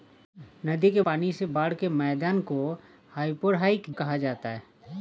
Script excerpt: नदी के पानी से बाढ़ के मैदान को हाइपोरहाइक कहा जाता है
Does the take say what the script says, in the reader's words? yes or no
yes